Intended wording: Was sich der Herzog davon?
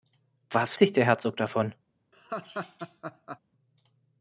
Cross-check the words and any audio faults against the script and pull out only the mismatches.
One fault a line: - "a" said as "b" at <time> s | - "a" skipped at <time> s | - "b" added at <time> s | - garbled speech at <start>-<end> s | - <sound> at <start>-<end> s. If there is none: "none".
- laugh at 2.1-3.4 s